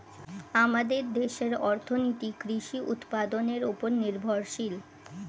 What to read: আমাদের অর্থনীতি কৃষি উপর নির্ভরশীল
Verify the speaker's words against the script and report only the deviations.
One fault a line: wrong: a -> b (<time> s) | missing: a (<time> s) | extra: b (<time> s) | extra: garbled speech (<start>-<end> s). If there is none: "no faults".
extra: দেশের (1.1 s)
extra: উৎপাদনের (2.9 s)